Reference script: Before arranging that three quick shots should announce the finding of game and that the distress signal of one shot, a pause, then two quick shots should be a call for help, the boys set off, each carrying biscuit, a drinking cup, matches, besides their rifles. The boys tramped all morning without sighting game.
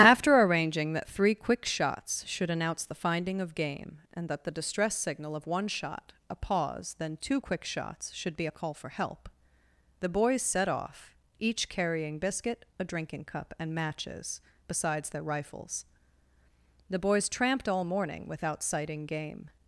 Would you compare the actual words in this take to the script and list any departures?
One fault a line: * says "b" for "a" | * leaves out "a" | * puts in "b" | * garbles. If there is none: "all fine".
* says "After" for "Before"
* puts in "and"